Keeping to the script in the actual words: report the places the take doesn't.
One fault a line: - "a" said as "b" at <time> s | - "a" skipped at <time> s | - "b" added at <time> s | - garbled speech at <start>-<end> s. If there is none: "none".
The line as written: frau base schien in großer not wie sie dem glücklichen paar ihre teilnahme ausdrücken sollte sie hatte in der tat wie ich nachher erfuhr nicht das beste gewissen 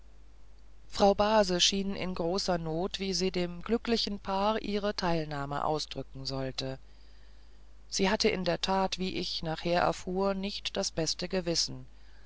none